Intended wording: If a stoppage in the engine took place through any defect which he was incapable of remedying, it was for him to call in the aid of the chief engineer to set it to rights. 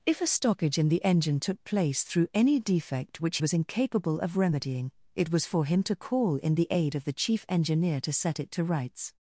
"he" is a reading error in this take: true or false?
true